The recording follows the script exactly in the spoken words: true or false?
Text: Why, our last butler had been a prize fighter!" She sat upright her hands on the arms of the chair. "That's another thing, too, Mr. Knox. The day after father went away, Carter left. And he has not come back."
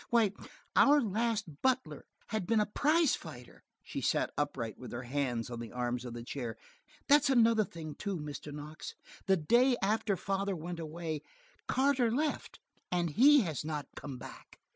false